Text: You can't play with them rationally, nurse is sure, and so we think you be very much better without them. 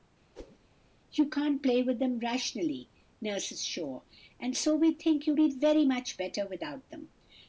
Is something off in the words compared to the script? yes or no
no